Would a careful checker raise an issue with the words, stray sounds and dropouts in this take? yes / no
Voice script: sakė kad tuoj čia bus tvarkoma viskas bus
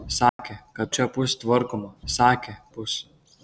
yes